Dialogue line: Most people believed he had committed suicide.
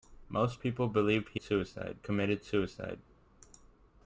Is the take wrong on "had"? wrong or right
wrong